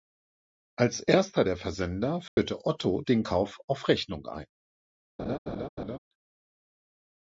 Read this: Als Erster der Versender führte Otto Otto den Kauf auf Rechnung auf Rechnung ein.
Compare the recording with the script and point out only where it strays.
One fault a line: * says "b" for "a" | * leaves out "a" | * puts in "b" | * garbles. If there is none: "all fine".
* leaves out "Otto"
* leaves out "auf Rechnung"